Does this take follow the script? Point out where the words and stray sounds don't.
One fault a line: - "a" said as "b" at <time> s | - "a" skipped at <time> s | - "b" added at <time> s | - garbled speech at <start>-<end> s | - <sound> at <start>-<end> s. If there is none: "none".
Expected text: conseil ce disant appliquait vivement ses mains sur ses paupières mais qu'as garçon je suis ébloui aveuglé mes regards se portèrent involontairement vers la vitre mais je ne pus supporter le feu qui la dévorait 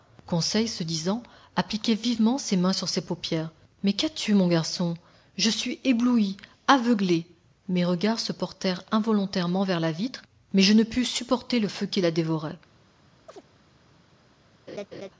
- "tu mon" added at 4.1 s
- chirp at 13.3-13.4 s
- laugh at 14.7-15.1 s